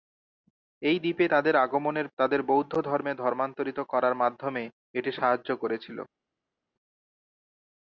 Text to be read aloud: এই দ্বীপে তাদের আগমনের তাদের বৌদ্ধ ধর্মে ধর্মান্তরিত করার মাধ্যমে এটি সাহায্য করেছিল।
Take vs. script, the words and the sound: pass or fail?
pass